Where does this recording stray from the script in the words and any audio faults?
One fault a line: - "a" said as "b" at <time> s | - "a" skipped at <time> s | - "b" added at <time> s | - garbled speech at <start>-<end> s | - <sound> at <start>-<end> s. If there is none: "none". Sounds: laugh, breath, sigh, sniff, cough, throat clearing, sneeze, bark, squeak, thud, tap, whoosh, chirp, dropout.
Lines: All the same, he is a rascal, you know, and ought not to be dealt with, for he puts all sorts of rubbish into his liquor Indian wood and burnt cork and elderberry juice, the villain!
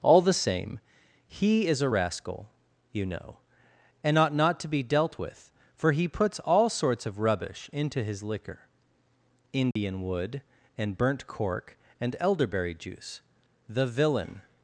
- dropout at 9.7-9.8 s